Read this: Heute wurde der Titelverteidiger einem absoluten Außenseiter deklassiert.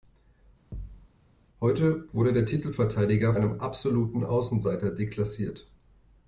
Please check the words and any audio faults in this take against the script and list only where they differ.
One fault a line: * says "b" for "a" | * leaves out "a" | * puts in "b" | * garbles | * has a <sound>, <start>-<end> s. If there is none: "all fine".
* has a thud, 0.7-1.1 s